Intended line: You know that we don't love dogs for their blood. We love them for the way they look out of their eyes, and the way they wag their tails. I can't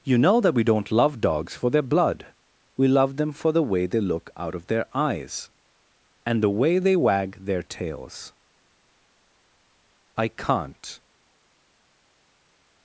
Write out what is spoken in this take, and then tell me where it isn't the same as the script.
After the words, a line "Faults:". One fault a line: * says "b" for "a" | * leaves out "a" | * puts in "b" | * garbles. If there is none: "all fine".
You know that we don't love dogs for their blood. We love them for the way they look out of their eyes, and the way they wag their tails. I can't
Faults:
all fine